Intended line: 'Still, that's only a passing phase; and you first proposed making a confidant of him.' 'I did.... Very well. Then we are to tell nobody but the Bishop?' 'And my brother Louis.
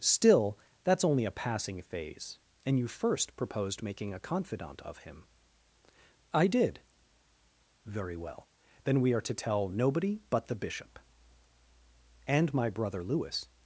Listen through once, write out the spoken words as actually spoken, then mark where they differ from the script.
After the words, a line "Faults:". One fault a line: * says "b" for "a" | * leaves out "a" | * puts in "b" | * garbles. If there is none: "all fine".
'Still, that's only a passing phase; and you first proposed making a confidant of him.' 'I did.... Very well. Then we are to tell nobody but the Bishop?' 'And my brother Louis.
Faults:
all fine